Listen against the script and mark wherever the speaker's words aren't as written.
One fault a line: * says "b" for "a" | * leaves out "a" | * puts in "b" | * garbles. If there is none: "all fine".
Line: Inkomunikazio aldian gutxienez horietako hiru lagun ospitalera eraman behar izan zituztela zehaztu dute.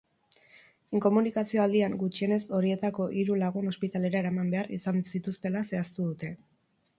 all fine